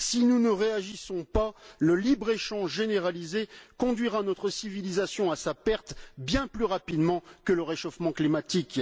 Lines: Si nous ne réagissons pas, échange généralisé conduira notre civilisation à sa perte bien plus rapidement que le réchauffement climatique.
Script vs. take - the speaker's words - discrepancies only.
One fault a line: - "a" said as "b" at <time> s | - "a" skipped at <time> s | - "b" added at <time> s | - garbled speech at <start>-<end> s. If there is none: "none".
- "le libre" added at 1.8 s